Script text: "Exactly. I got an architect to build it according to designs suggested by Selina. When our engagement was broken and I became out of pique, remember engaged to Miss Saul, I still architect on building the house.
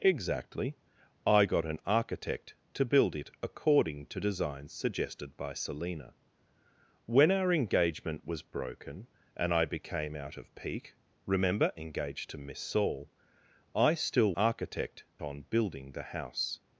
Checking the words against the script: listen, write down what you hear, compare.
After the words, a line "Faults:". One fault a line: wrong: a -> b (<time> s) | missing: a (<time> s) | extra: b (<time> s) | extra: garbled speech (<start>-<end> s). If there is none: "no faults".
"Exactly. I got an architect to build it according to designs suggested by Selina. When our engagement was broken and I became out of pique, remember engaged to Miss Saul, I still architect on building the house.
Faults:
no faults